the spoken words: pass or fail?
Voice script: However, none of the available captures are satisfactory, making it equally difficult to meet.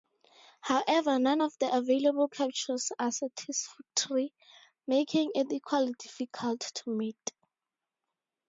pass